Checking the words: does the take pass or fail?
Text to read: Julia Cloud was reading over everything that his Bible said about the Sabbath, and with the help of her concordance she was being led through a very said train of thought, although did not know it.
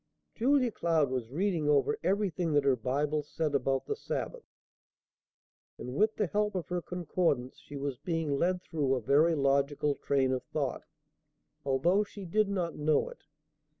fail